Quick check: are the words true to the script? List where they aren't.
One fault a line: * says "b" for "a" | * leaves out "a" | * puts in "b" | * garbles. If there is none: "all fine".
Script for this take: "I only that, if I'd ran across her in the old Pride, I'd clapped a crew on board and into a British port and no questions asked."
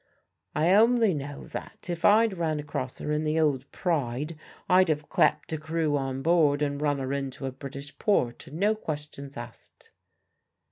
* puts in "know"
* puts in "have"
* puts in "run her"